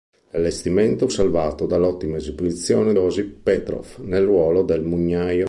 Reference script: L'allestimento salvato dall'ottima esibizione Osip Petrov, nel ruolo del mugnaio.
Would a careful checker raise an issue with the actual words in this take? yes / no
no